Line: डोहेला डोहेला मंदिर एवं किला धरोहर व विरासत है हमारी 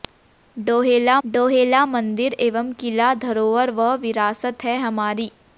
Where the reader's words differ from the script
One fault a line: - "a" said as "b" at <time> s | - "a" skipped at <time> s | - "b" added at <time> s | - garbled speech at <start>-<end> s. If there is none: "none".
none